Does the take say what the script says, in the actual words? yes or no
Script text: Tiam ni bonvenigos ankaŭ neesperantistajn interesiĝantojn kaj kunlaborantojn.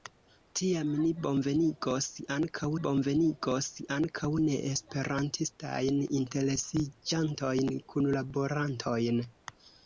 no